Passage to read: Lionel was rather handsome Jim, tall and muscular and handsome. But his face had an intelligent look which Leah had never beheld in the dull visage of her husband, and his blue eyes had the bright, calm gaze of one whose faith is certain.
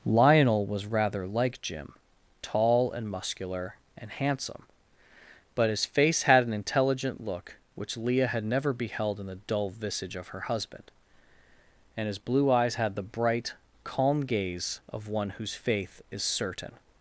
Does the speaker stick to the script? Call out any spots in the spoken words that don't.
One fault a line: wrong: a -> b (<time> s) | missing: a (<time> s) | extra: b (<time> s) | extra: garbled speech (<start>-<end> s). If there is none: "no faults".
wrong: handsome -> like (1.3 s)